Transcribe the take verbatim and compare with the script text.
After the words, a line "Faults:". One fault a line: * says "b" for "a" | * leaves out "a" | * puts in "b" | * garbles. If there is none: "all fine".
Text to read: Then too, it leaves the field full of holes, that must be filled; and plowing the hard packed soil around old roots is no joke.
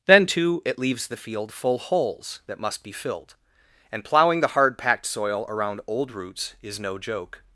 Then too, it leaves the field full holes, that must be filled; and plowing the hard packed soil around old roots is no joke.
Faults:
* leaves out "of"